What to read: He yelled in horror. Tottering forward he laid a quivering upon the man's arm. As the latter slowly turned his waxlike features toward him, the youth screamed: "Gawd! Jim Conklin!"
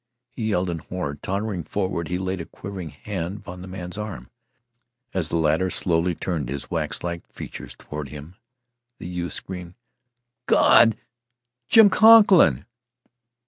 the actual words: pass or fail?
fail